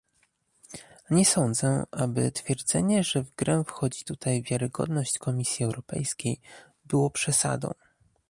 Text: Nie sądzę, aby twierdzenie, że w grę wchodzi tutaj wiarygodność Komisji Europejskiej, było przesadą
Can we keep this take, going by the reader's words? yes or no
yes